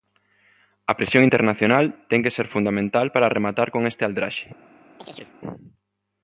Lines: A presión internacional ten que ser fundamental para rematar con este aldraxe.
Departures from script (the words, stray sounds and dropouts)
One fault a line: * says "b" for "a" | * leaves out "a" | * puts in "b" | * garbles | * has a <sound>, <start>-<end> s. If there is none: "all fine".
* has a chirp, 5.0-5.4 s